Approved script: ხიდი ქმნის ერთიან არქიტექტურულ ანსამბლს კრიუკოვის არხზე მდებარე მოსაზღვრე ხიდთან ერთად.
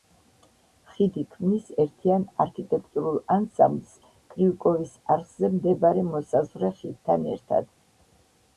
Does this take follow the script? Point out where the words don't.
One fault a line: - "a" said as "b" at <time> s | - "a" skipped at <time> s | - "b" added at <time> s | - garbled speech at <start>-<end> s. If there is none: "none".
none